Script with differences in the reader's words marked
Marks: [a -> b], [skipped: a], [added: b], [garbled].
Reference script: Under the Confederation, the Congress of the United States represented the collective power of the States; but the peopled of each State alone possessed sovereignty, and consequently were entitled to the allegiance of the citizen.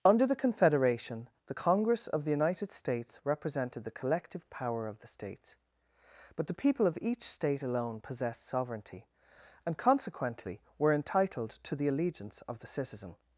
Under the Confederation, the Congress of the United States represented the collective power of the States; but the [peopled -> people] of each State alone possessed sovereignty, and consequently were entitled to the allegiance of the citizen.